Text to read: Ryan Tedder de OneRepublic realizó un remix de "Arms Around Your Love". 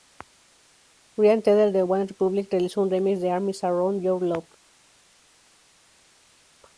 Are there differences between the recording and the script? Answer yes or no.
no